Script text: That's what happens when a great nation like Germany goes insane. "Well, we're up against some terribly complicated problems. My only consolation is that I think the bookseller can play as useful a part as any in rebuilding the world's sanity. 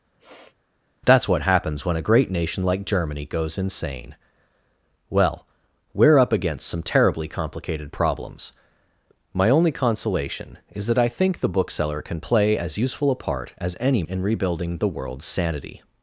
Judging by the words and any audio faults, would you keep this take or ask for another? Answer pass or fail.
fail